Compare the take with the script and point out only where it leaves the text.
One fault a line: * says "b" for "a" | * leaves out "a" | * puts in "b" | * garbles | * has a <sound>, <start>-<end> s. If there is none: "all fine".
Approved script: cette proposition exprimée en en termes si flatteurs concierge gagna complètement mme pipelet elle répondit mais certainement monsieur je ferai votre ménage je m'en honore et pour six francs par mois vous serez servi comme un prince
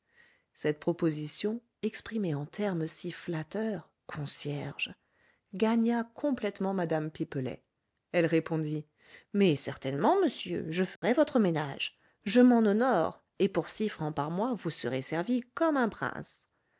* leaves out "en"
* has a dropout, 11.0-11.0 s